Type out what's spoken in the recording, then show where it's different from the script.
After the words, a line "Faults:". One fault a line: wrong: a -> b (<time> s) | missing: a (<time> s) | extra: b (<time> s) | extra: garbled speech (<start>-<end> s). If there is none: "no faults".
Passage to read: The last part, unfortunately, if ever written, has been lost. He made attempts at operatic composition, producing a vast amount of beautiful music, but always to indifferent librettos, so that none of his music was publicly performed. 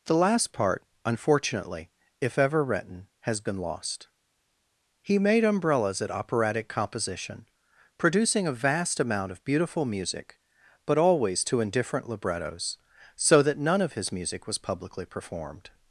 The last part, unfortunately, if ever written, has been lost. He made umbrellas at operatic composition, producing a vast amount of beautiful music, but always to indifferent librettos, so that none of his music was publicly performed.
Faults:
wrong: attempts -> umbrellas (5.4 s)